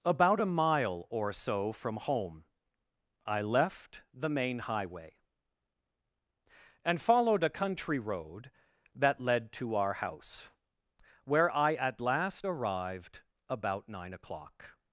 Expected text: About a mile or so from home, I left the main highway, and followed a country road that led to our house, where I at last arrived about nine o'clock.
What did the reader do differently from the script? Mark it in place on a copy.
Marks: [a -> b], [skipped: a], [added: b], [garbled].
About a mile or so from home, I left the main highway, and followed a country road that led to our house, where I at last arrived about nine o'clock.